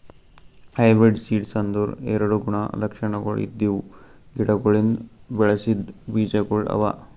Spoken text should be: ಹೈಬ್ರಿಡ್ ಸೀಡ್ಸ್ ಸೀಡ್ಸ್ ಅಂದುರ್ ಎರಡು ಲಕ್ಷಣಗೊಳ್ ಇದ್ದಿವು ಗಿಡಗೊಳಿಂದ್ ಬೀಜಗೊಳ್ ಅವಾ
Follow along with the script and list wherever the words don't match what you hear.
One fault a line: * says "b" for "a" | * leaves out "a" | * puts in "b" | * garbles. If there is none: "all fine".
* leaves out "ಸೀಡ್ಸ್"
* puts in "ಗುಣ"
* puts in "ಬೆಳಸಿದ್"